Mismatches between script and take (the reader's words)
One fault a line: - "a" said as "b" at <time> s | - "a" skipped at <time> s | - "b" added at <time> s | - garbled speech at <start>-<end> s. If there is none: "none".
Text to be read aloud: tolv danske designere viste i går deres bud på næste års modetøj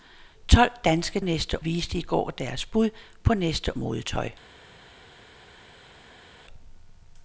- "designere" said as "næste" at 1.2 s
- "års" skipped at 3.8 s